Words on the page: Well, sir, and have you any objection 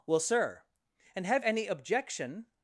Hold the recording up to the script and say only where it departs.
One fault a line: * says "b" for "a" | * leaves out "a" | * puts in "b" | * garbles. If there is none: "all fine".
* leaves out "you"